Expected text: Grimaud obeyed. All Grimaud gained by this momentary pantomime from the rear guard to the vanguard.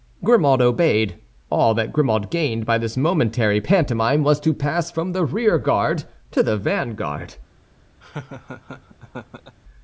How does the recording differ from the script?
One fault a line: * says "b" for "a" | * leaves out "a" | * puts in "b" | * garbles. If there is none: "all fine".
* puts in "that"
* puts in "was to pass"